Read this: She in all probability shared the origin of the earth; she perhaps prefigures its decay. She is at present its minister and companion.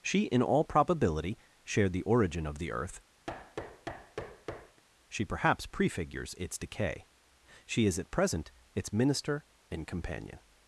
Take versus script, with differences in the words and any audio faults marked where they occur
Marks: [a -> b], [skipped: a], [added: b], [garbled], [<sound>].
She in all probability shared the origin of the earth; [thud] she perhaps prefigures its decay. She is at present its minister and companion.